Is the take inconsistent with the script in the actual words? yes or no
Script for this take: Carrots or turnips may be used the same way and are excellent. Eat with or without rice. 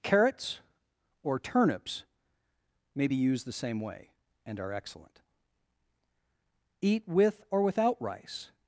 no